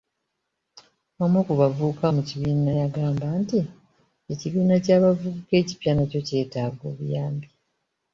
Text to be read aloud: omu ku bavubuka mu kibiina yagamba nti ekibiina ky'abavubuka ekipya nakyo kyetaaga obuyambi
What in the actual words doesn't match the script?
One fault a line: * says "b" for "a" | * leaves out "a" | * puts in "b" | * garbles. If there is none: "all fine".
all fine